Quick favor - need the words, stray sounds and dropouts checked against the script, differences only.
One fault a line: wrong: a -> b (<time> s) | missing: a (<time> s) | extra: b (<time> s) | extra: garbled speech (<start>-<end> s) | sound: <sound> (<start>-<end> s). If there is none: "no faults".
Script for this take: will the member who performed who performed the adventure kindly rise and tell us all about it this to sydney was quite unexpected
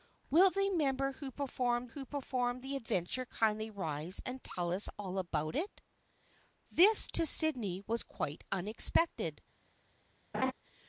sound: laugh (10.3-10.5 s)